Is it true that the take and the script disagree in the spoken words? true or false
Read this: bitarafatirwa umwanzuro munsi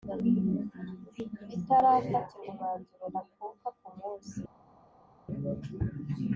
true